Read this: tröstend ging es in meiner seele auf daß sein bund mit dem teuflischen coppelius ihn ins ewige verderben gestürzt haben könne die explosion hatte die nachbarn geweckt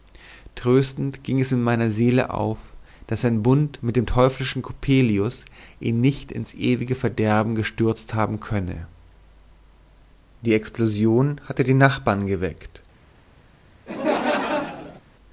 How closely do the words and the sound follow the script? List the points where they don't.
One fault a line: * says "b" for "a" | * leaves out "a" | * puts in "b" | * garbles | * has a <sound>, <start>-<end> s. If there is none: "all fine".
* puts in "nicht"
* has a laugh, 13.9-15.0 s